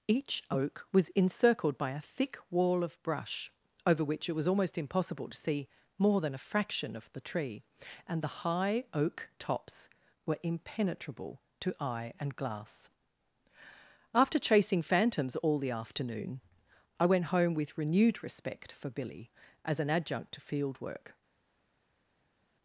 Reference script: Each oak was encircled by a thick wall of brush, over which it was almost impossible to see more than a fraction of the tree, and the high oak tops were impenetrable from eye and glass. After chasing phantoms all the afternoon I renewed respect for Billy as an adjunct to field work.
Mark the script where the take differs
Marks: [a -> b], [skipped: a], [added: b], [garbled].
Each oak was encircled by a thick wall of brush, over which it was almost impossible to see more than a fraction of the tree, and the high oak tops were impenetrable [from -> to] eye and glass. After chasing phantoms all the afternoon I [added: went home with] renewed respect for Billy as an adjunct to field work.